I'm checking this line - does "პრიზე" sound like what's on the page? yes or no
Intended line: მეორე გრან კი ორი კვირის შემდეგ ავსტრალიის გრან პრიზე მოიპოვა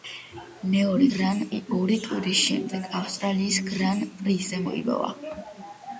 yes